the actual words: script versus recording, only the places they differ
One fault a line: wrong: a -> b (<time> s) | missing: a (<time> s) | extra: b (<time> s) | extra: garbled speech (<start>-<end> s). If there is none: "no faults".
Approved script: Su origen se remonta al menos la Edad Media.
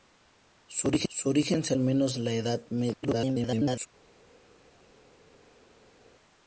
missing: remonta (1.7 s)
extra: garbled speech (3.0-3.9 s)